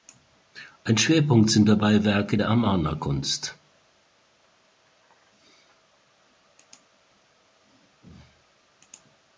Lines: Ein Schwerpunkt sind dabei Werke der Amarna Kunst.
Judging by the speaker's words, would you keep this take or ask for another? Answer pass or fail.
pass